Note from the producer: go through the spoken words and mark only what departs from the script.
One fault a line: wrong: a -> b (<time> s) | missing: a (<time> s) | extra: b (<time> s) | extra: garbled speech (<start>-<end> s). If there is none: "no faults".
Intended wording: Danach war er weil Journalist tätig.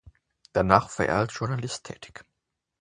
wrong: weil -> als (1.2 s)